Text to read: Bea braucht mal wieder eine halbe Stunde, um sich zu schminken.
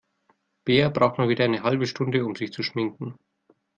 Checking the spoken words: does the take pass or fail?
pass